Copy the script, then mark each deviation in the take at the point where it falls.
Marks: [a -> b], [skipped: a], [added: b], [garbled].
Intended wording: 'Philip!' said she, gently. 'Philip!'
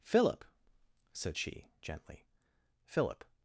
'Philip!' said she, gently. 'Philip!'